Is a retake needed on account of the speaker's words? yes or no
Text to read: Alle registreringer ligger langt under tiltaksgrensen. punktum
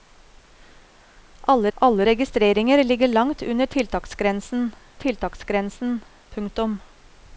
yes